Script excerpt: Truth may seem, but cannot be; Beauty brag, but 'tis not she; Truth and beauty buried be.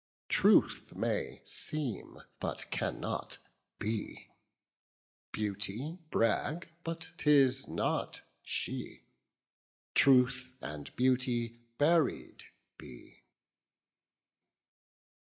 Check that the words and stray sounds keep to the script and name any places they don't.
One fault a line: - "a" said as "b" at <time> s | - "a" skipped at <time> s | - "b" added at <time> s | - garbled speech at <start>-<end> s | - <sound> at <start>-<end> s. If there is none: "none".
none